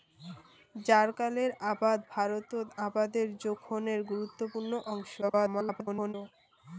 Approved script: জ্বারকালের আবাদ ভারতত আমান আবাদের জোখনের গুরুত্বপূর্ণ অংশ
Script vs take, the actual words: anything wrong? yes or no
yes